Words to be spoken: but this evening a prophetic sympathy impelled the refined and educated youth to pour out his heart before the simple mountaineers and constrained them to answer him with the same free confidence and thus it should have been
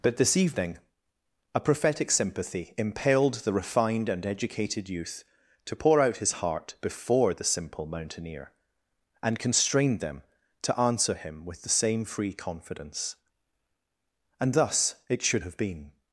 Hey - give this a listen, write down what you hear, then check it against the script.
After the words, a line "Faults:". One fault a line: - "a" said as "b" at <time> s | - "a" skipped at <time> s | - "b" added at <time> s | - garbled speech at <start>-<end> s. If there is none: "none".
but this evening a prophetic sympathy impelled the refined and educated youth to pour out his heart before the simple mountaineer and constrained them to answer him with the same free confidence and thus it should have been
Faults:
- "mountaineers" said as "mountaineer" at 7.8 s